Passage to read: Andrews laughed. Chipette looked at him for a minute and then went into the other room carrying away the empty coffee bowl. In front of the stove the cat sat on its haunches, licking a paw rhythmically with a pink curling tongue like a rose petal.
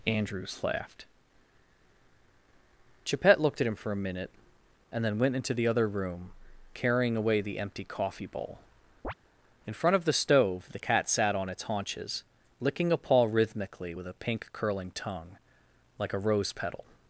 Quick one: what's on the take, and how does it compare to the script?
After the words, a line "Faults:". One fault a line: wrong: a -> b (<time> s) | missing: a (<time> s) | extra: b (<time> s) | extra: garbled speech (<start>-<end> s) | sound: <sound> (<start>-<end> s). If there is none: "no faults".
Andrews laughed. Chipette looked at him for a minute and then went into the other room carrying away the empty coffee bowl. In front of the stove the cat sat on its haunches, licking a paw rhythmically with a pink curling tongue like a rose petal.
Faults:
sound: chirp (9.0-9.1 s)